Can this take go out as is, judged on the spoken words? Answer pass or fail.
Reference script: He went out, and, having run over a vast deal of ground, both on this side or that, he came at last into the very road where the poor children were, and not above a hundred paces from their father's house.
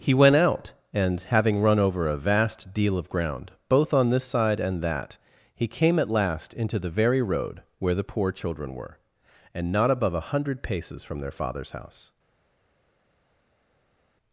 fail